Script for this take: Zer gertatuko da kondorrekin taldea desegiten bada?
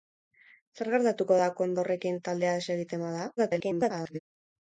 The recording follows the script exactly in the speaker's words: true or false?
false